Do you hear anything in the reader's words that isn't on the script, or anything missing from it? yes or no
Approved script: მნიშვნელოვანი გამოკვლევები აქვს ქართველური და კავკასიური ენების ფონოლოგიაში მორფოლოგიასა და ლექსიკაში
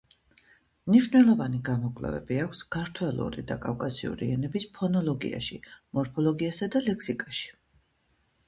no